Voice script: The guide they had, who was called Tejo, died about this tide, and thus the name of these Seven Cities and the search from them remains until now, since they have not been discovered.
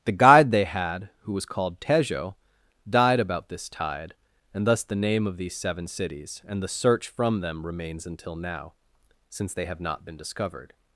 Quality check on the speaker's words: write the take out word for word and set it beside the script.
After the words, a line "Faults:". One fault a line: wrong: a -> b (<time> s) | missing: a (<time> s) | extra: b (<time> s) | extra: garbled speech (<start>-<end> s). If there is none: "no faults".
The guide they had, who was called Tejo, died about this tide, and thus the name of these Seven Cities and the search from them remains until now, since they have not been discovered.
Faults:
no faults